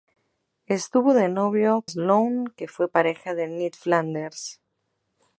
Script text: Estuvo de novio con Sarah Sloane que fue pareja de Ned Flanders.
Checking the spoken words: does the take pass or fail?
fail